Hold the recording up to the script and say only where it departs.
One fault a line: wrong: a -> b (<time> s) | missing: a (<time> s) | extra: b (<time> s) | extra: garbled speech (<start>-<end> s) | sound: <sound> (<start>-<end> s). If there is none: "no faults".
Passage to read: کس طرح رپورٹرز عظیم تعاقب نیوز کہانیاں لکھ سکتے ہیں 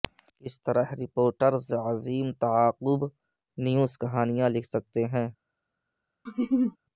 sound: laugh (6.3-6.8 s)